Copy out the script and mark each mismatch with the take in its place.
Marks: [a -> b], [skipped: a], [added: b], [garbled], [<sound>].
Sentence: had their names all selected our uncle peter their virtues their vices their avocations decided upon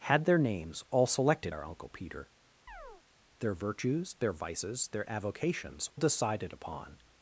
had their names all selected our uncle peter [chirp] their virtues their vices their avocations decided upon